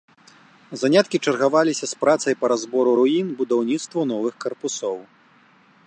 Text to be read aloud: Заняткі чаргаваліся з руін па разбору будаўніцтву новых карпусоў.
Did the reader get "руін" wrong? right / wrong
wrong